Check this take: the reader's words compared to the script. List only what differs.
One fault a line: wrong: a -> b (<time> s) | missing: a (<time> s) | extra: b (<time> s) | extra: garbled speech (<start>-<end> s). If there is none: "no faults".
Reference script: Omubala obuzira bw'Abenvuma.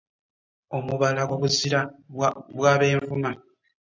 no faults